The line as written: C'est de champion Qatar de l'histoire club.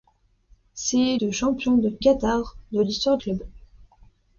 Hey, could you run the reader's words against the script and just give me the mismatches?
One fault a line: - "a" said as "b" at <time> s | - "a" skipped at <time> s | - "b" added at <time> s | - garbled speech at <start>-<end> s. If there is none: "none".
none